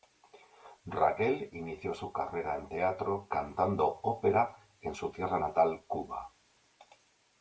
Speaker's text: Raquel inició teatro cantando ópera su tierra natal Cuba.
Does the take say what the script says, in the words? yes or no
no